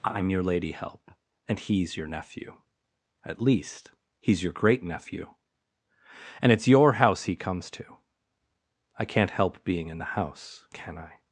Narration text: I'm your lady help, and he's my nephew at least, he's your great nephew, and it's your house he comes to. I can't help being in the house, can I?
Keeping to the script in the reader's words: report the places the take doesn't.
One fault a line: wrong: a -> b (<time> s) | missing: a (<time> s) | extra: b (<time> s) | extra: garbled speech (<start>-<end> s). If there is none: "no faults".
wrong: my -> your (1.9 s)